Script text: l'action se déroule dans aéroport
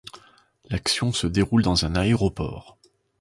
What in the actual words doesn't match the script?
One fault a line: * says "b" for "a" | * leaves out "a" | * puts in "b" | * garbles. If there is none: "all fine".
* puts in "un"